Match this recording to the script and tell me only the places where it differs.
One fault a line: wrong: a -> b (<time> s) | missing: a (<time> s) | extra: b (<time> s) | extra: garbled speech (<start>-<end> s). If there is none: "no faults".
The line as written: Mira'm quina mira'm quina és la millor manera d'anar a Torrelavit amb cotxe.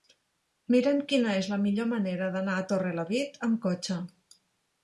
missing: mira'm quina (1.4 s)